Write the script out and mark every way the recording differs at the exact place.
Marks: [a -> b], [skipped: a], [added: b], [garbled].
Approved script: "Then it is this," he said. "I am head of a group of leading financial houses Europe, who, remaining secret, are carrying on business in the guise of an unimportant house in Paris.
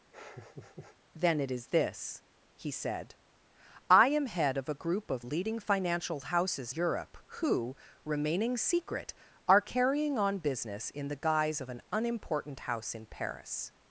"Then it is this," he said. "I am head of a group of leading financial houses Europe, who, remaining secret, are carrying on business in the guise of an unimportant house in Paris.